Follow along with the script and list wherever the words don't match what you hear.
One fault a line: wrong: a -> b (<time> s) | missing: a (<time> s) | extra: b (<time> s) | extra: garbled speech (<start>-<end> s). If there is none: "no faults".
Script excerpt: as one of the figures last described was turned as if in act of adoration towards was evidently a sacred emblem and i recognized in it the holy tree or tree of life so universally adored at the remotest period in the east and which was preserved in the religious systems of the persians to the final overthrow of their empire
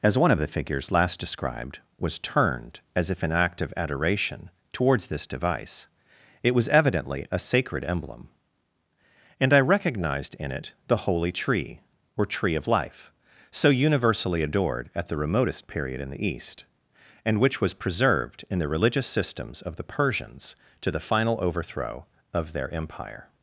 extra: this device it (5.1 s)